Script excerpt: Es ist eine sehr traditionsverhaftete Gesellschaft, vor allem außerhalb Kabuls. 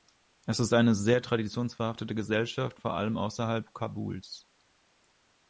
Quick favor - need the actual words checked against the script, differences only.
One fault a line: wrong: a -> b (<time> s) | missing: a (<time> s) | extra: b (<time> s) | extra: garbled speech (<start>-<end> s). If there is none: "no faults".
no faults